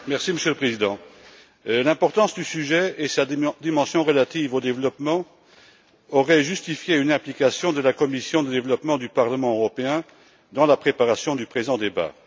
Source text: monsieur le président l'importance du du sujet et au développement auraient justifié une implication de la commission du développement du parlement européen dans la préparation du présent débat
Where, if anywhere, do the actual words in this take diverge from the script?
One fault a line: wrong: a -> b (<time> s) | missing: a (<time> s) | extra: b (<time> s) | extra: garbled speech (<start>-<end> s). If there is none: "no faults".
missing: du (2.4 s)
extra: sa dimension relative (3.1 s)